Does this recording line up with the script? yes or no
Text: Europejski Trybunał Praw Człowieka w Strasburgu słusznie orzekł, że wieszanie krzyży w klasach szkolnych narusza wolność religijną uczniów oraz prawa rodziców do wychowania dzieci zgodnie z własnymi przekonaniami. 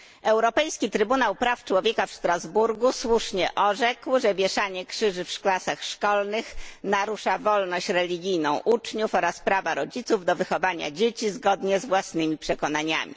yes